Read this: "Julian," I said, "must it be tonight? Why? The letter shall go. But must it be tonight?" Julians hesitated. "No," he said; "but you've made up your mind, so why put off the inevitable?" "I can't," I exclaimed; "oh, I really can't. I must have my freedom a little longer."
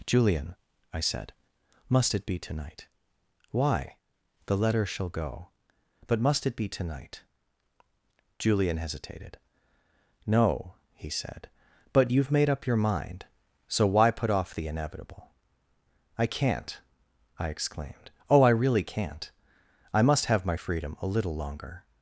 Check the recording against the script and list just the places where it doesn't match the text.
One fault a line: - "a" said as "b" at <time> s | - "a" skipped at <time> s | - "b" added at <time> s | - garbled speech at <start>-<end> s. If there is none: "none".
- "Julians" said as "Julian" at 8.4 s